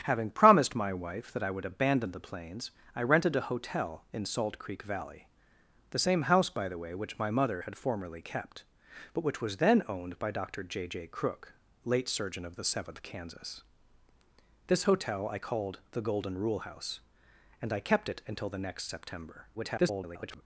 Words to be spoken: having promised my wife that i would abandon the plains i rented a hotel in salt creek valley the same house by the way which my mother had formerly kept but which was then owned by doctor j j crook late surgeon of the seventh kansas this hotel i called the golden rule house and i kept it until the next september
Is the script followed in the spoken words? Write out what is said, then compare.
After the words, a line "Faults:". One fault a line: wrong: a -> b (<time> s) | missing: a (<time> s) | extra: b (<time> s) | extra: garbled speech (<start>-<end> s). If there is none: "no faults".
having promised my wife that i would abandon the plains i rented a hotel in salt creek valley the same house by the way which my mother had formerly kept but which was then owned by doctor j j crook late surgeon of the seventh kansas this hotel i called the golden rule house and i kept it until the next september [garbled]
Faults:
extra: garbled speech (19.5-20.4 s)